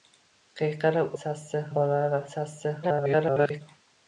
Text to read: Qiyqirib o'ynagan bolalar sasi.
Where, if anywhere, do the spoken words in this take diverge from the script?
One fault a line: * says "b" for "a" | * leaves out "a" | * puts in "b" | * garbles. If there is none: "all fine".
* says "sasi" for "o'ynagan"
* garbles